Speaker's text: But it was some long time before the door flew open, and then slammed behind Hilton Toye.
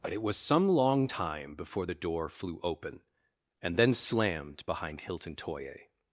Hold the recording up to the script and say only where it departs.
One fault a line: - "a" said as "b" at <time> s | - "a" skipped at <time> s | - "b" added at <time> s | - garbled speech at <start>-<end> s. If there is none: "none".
none